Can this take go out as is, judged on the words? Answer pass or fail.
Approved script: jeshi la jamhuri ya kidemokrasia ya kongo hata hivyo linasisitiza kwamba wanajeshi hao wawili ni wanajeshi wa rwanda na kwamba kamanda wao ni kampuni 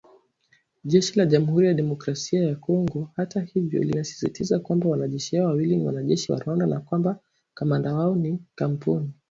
pass